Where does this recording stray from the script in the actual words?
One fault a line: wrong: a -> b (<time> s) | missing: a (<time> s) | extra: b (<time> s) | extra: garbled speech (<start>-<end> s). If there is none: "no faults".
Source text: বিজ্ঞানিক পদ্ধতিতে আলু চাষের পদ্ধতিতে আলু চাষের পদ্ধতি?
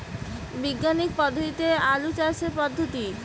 missing: পদ্ধতিতে আলু চাষের (2.5 s)